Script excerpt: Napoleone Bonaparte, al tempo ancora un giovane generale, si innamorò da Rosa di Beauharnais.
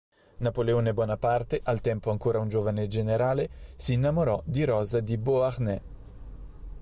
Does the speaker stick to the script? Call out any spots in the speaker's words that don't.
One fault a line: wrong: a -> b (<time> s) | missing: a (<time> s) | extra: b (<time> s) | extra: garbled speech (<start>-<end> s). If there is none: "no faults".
wrong: da -> di (4.5 s)